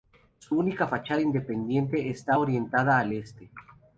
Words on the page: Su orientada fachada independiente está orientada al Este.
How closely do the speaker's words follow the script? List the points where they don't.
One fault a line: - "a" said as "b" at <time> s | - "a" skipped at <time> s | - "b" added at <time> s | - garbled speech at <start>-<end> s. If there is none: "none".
- "orientada" said as "única" at 0.6 s